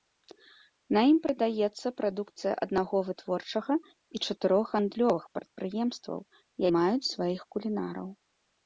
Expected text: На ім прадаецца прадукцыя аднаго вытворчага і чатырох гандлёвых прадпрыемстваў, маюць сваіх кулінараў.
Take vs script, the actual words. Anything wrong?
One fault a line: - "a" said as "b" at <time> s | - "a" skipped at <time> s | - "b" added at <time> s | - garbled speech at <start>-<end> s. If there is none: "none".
none